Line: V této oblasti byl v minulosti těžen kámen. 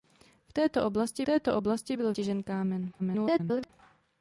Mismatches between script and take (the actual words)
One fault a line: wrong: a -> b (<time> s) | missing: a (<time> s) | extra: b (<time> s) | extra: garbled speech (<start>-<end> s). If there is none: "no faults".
extra: této oblasti (1.2 s)
missing: minulosti (2.2 s)
extra: garbled speech (3.0-3.7 s)